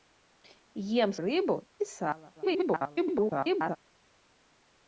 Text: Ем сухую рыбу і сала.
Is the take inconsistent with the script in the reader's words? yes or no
yes